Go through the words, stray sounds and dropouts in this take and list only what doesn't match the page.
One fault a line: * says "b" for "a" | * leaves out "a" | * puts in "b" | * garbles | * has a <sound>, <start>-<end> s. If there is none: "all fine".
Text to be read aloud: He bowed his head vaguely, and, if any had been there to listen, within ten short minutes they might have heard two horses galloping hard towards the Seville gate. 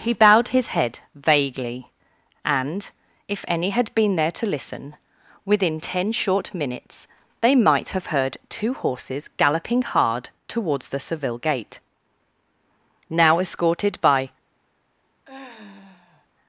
* puts in "Now escorted by"
* has a sigh, 15.2-16.3 s